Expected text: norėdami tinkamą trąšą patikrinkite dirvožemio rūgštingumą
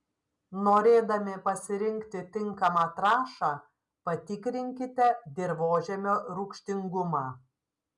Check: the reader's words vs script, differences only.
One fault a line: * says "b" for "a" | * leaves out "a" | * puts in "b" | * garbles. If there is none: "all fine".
* puts in "pasirinkti"